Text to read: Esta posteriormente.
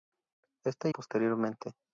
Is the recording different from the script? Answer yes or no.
no